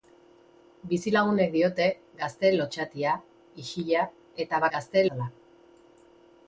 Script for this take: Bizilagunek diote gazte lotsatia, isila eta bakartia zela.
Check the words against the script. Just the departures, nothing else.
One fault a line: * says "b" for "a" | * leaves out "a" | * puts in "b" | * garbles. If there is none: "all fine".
* says "gazte" for "bakartia"